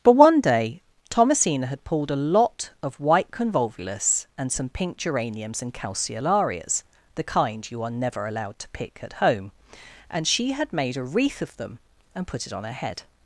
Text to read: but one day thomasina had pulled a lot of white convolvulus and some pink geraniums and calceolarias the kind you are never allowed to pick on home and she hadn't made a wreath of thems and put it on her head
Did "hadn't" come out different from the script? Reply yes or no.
yes